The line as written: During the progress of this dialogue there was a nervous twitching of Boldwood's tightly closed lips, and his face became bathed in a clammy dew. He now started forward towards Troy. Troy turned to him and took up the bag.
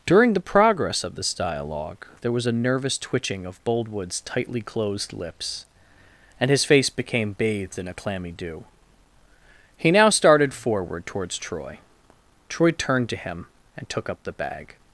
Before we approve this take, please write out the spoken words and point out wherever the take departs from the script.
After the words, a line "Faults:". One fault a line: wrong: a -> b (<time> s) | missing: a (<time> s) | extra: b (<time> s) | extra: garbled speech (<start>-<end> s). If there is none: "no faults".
During the progress of this dialogue there was a nervous twitching of Boldwood's tightly closed lips, and his face became bathed in a clammy dew. He now started forward towards Troy. Troy turned to him and took up the bag.
Faults:
no faults